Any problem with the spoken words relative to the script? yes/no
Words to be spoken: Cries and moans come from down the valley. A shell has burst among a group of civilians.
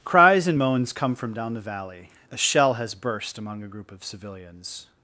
no